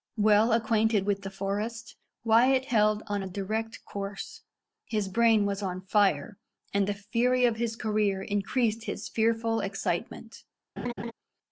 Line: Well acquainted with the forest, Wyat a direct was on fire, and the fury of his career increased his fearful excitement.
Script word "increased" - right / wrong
right